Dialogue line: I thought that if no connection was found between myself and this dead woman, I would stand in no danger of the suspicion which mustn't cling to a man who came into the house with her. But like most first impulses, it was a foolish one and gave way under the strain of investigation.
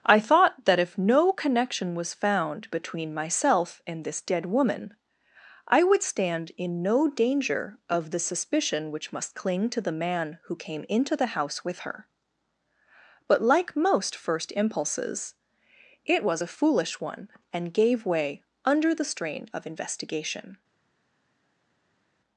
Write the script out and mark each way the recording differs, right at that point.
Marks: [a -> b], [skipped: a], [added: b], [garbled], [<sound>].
I thought that if no connection was found between myself and this dead woman, I would stand in no danger of the suspicion which [mustn't -> must] cling to [a -> the] man who came into the house with her. But like most first impulses, it was a foolish one and gave way under the strain of investigation.